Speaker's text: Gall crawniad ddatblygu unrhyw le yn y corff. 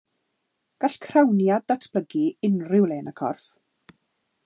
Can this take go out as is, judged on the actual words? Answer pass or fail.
pass